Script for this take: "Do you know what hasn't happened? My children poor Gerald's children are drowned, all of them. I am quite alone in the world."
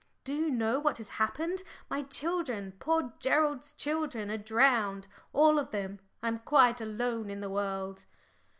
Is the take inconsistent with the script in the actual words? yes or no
yes